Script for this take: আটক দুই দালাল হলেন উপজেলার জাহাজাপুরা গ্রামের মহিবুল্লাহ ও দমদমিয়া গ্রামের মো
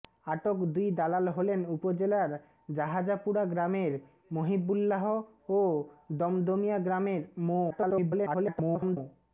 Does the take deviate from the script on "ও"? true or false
false